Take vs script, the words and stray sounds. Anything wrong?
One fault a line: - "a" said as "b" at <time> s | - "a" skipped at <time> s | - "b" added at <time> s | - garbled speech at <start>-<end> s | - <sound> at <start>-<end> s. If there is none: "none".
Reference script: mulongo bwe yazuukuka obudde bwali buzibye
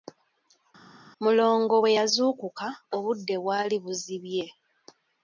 none